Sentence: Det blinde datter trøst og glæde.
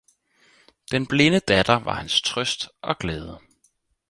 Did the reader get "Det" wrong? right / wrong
wrong